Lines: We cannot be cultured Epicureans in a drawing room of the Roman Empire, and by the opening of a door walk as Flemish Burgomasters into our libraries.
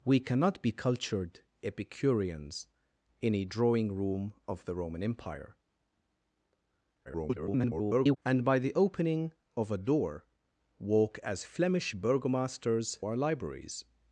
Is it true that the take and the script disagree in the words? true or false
true